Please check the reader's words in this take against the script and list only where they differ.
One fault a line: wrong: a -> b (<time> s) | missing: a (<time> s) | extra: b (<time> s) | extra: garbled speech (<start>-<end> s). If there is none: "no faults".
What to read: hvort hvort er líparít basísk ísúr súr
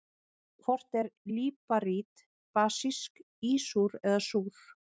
missing: hvort (1.0 s)
extra: eða (4.1 s)